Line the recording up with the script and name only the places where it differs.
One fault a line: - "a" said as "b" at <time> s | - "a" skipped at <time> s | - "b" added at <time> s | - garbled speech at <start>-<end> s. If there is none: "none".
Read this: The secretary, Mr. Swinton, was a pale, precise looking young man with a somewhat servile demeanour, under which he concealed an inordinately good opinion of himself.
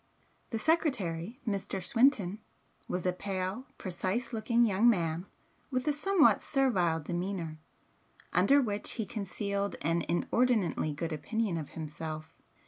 none